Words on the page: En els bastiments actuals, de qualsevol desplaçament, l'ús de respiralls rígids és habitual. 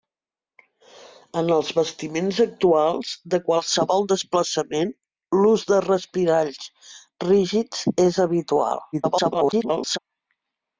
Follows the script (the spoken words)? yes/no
no